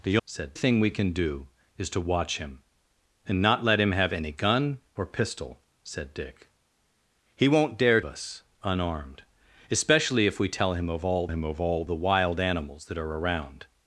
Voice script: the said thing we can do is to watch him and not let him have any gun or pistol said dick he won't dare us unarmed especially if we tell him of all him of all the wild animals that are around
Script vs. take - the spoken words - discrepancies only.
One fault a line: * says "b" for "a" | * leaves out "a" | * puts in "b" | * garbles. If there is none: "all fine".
all fine